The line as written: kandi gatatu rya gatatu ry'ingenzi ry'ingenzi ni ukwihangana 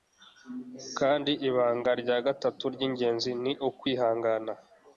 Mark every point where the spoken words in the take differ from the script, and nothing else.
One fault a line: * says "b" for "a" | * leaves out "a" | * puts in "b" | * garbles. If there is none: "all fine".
* says "ibanga" for "gatatu"
* leaves out "ry'ingenzi"